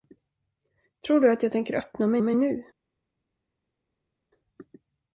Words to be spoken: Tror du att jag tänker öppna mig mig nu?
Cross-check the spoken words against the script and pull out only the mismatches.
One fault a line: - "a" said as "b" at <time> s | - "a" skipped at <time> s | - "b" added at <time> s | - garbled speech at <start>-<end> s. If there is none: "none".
none